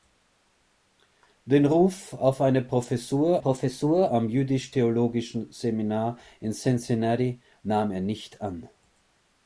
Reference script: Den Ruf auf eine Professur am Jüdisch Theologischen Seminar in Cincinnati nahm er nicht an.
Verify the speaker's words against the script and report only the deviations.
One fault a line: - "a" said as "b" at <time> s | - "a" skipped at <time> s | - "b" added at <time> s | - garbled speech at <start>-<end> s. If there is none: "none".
- "Professur" added at 3.4 s